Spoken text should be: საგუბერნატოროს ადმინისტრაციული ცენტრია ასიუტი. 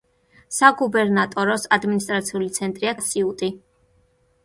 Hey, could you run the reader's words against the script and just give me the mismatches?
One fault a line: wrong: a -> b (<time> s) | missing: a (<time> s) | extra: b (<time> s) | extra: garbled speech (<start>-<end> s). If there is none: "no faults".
no faults